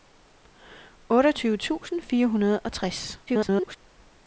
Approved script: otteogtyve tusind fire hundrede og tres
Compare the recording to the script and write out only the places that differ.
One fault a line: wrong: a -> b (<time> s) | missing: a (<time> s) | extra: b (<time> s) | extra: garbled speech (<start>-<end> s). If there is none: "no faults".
extra: garbled speech (3.3-3.8 s)